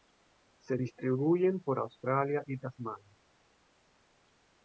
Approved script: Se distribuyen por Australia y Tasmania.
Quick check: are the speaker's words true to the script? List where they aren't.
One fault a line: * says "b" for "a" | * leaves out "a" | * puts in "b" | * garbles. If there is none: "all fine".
all fine